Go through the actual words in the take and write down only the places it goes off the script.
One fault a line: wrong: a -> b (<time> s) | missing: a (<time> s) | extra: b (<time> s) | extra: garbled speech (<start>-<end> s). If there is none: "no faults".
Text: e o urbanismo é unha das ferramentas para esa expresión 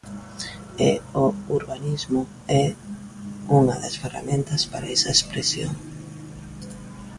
no faults